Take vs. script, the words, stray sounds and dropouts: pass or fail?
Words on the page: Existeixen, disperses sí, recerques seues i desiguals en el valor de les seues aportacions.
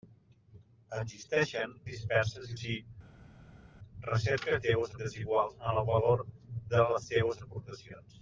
pass